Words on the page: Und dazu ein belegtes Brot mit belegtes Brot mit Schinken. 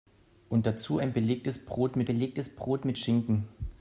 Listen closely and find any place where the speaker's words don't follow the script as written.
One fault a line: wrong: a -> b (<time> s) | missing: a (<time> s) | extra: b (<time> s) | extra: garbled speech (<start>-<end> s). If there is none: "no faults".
no faults